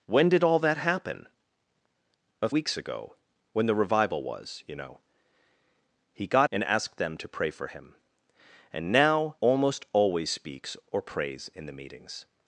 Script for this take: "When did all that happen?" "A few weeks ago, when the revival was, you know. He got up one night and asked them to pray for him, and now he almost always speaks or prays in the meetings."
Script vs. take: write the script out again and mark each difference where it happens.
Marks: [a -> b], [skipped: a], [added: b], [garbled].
"When did all that happen?" "A [skipped: few] weeks ago, when the revival was, you know. He got [skipped: up one night] and asked them to pray for him, and now [skipped: he] almost always speaks or prays in the meetings."